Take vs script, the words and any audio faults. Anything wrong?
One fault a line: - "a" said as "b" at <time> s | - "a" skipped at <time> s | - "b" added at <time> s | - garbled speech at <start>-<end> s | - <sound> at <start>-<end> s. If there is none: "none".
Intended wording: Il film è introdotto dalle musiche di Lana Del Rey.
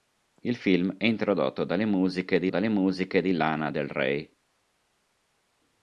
- "dalle musiche di" added at 2.5 s